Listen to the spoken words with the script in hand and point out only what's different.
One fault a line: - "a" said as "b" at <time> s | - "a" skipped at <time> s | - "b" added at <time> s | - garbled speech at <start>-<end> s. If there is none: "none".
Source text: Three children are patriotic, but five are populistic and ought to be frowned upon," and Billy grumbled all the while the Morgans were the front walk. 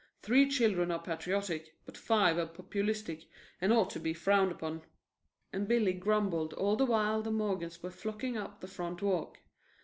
- "flocking up" added at 7.9 s